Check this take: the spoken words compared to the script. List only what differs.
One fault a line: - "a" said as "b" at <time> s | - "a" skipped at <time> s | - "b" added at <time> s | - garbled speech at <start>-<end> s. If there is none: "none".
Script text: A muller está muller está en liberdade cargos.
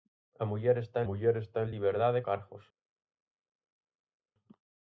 none